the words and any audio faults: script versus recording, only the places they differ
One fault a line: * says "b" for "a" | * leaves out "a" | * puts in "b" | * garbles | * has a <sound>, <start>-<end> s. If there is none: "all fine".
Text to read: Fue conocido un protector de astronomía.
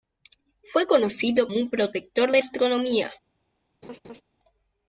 * has a laugh, 3.8-4.2 s